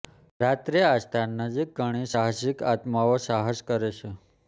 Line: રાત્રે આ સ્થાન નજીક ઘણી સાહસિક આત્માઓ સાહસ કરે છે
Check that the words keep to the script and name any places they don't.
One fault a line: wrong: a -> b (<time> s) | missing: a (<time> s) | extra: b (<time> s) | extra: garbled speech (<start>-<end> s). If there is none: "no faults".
no faults